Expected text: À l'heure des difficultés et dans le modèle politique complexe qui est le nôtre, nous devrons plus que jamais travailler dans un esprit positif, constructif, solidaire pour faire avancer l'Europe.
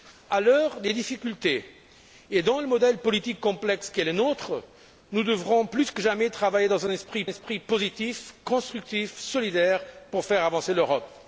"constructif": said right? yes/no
yes